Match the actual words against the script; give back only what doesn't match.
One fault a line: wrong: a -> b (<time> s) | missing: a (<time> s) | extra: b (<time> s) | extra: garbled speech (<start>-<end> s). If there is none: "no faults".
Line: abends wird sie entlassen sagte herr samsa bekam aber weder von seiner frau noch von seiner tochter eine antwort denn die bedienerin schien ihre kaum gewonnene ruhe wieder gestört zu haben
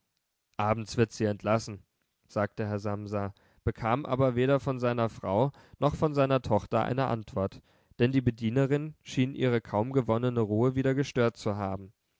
no faults